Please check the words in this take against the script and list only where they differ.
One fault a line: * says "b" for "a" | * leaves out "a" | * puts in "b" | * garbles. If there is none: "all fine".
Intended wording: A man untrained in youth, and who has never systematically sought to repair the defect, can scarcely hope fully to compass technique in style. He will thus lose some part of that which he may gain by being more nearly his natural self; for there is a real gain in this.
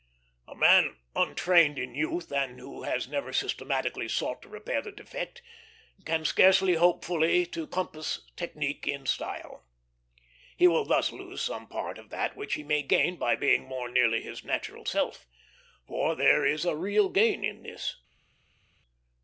all fine